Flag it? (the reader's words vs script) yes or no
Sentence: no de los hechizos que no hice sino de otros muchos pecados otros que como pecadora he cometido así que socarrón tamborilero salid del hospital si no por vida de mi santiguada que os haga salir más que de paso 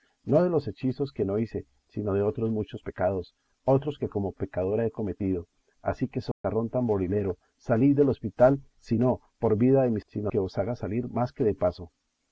yes